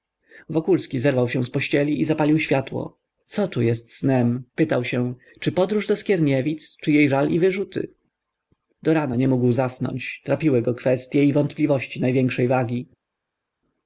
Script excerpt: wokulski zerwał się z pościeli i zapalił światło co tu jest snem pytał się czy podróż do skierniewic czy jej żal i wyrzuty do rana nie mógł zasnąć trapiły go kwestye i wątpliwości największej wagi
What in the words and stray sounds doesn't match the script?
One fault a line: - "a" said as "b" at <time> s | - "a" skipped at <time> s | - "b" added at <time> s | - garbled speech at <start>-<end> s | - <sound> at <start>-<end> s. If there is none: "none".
none